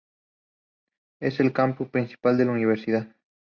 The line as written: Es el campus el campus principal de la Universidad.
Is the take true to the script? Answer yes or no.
no